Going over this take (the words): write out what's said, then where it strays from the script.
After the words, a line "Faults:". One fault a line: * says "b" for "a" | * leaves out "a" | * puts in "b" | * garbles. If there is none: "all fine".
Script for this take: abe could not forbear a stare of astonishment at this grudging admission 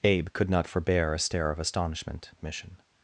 abe could not forbear a stare of astonishment admission
Faults:
* leaves out "at this grudging"